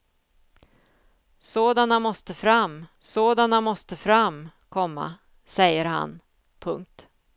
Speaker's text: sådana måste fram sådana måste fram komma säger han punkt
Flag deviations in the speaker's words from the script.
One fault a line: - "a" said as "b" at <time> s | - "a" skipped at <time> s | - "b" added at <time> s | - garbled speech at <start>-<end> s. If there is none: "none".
none